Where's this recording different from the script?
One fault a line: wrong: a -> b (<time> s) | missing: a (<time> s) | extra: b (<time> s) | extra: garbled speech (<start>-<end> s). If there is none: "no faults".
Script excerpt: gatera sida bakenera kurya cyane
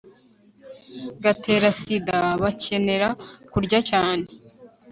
no faults